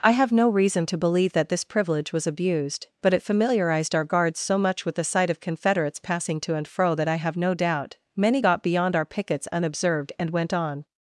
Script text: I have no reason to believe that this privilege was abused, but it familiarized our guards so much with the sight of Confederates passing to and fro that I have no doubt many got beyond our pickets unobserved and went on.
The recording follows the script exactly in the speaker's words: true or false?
true